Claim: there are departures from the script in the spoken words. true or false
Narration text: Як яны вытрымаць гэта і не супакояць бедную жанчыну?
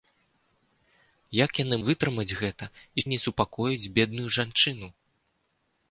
false